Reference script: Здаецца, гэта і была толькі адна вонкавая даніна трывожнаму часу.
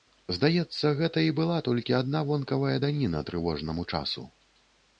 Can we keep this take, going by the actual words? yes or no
yes